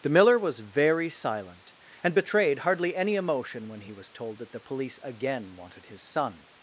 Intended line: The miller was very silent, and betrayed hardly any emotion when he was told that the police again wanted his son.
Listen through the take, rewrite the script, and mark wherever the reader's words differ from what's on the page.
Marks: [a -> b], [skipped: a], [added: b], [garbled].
The miller was very silent, and betrayed hardly any emotion when he was told that the police again wanted his son.